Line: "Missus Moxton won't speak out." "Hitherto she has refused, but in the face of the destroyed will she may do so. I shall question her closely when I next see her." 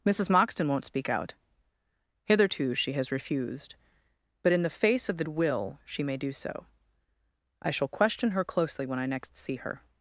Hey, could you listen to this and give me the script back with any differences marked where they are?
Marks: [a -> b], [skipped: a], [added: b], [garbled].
"Missus Moxton won't speak out." "Hitherto she has refused, but in the face of the [skipped: destroyed] will she may do so. I shall question her closely when I next see her."